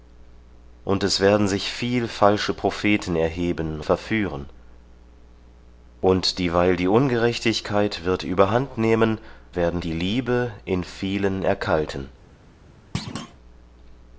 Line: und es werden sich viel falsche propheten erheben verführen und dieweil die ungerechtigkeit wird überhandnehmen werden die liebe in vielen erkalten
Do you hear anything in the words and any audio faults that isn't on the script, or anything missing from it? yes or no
yes